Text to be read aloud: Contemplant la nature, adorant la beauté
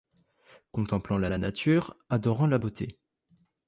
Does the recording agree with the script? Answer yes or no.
no